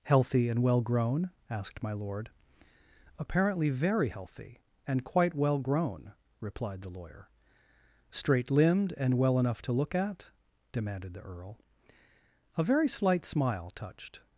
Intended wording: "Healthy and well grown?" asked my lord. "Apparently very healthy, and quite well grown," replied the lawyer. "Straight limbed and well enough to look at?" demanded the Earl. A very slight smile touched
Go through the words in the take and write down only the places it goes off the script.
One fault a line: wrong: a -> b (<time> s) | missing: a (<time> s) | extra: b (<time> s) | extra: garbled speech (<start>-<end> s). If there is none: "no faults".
no faults